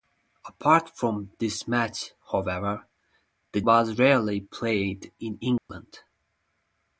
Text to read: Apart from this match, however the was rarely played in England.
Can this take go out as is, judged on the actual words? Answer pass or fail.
pass